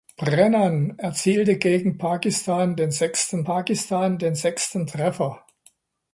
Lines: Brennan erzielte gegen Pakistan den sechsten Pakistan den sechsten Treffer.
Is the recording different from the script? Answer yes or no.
no